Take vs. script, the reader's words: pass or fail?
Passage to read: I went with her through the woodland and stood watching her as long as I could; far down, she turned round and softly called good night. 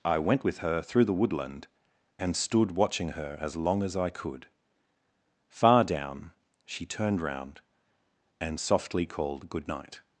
pass